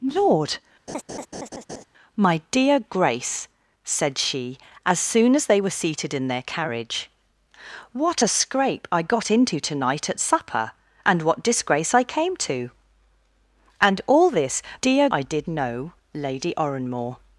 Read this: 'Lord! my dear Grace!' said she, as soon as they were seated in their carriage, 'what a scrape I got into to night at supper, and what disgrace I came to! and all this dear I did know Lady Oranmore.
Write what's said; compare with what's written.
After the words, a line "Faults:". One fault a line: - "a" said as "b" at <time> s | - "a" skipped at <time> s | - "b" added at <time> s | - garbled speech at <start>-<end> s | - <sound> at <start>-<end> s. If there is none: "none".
'Lord! my dear Grace!' said she, as soon as they were seated in their carriage, 'what a scrape I got into to night at supper, and what disgrace I came to! and all this dear I did know Lady Oranmore.
Faults:
- laugh at 0.9-1.8 s